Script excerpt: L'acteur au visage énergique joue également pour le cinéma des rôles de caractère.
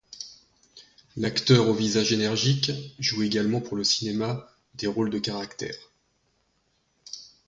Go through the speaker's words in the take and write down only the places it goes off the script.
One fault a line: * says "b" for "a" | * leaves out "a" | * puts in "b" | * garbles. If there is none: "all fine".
all fine